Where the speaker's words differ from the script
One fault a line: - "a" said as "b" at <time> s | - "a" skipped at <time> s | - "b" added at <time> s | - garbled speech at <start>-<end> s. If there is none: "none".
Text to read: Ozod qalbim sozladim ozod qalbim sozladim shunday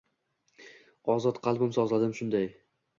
- "ozod qalbim sozladim" skipped at 2.2 s